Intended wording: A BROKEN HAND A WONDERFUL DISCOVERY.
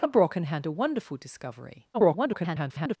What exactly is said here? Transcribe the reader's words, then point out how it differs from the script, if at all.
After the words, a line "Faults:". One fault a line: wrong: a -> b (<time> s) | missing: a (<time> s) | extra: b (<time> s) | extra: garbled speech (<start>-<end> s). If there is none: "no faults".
A BROKEN HAND A WONDERFUL DISCOVERY. [garbled]
Faults:
extra: garbled speech (1.9-3.0 s)